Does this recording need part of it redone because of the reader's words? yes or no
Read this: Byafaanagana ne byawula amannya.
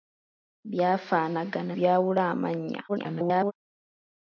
yes